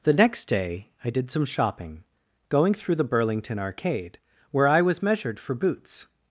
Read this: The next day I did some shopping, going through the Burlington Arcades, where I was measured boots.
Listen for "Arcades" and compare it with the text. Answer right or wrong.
wrong